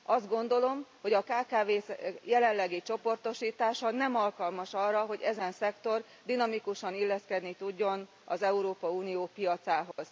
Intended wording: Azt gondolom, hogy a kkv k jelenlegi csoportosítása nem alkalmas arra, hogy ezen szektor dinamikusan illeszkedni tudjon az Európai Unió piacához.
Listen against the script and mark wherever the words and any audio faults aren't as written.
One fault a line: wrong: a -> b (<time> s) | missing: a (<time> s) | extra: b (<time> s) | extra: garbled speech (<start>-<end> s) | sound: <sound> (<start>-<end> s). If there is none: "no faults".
sound: dropout (9.9-10.0 s)